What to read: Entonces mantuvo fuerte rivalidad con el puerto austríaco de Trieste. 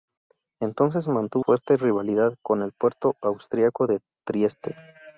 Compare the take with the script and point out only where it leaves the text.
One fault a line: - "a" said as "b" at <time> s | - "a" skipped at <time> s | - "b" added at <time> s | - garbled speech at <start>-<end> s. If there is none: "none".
none